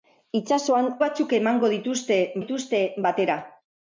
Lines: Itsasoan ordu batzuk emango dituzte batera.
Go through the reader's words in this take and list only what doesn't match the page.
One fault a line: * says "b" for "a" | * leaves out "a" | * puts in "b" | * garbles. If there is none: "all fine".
* leaves out "ordu"
* puts in "dituzte"